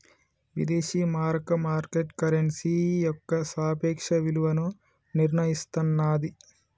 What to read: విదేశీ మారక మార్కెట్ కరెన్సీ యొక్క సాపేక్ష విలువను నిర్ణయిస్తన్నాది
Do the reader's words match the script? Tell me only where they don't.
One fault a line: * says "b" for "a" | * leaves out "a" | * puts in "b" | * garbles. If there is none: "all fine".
all fine